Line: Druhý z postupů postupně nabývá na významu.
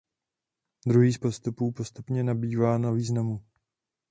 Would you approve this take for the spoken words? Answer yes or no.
yes